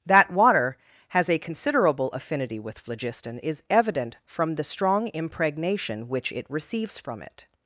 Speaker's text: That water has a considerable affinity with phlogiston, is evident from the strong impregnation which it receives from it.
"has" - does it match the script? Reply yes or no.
yes